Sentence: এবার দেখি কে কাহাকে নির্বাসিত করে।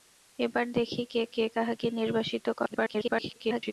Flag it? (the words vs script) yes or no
yes